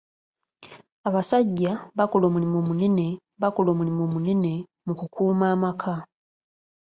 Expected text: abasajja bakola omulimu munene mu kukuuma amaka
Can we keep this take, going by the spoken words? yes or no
no